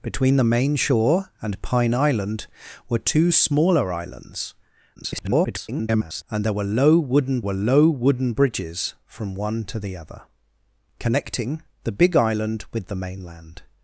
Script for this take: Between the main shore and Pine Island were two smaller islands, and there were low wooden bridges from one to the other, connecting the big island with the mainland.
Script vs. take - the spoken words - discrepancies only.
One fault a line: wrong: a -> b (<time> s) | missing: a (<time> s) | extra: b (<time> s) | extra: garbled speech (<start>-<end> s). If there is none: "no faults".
extra: garbled speech (5.0-6.2 s)
extra: were low wooden (7.4 s)